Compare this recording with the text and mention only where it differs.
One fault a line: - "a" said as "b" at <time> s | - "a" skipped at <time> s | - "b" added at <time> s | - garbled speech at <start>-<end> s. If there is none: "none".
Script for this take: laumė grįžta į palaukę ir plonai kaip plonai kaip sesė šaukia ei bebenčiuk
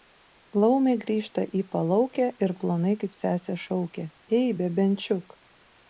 - "plonai kaip" skipped at 3.2 s